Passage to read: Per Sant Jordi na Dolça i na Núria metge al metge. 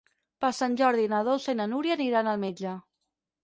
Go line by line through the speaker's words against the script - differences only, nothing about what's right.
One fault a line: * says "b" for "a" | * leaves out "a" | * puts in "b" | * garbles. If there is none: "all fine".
* says "aniran" for "metge"